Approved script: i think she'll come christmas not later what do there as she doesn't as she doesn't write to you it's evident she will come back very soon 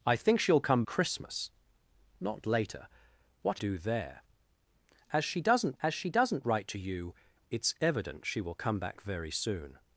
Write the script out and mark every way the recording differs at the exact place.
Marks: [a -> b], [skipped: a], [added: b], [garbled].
i think she'll come christmas not later what do there as she doesn't as she doesn't write to you it's evident she will come back very soon